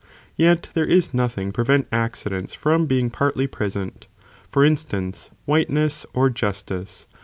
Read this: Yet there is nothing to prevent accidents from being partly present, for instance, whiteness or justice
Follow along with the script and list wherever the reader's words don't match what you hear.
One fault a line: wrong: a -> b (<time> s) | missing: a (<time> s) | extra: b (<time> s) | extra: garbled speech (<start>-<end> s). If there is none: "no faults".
missing: to (1.5 s)